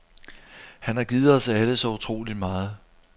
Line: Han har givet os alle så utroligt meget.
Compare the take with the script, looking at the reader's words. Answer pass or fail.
pass